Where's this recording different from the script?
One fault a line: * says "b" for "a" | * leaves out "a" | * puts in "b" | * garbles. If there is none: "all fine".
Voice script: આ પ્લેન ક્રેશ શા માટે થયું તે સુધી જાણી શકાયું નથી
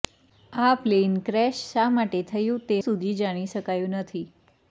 all fine